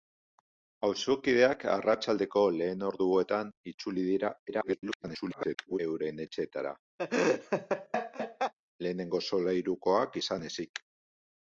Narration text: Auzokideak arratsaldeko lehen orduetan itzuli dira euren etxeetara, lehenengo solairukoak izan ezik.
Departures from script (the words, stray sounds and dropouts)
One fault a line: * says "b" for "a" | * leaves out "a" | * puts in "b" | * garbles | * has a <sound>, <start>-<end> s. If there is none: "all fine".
* garbles
* has a laugh, 7.0-8.5 s